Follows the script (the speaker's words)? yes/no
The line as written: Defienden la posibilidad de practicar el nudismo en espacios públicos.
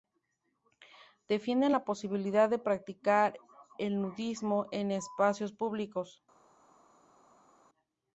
yes